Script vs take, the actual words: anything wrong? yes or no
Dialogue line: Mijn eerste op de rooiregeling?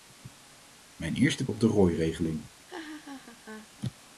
no